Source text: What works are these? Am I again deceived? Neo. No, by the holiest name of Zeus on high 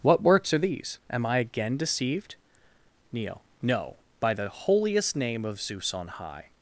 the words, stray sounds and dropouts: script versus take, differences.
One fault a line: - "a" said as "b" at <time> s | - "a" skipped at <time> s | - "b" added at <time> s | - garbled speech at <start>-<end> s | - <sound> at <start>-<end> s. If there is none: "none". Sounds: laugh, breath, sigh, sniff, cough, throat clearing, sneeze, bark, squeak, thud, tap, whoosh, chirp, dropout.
none